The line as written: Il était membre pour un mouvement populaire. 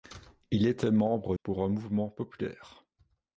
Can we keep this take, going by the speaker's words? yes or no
yes